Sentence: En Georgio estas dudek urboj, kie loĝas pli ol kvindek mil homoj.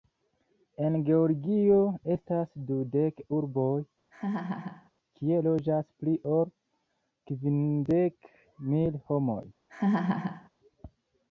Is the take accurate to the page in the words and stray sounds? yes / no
no